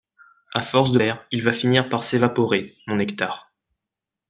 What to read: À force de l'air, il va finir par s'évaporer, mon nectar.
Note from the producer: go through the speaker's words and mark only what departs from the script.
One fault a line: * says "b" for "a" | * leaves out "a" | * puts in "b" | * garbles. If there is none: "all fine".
all fine